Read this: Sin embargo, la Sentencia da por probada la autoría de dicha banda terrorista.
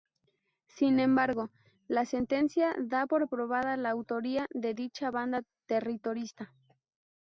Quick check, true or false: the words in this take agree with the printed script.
true